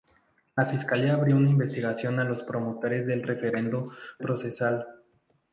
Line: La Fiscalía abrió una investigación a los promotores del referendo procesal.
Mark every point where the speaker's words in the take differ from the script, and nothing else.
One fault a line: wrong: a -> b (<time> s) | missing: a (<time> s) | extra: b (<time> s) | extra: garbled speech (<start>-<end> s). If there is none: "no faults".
no faults